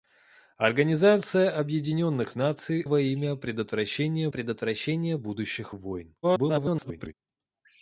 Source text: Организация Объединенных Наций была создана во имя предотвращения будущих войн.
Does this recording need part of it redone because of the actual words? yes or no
yes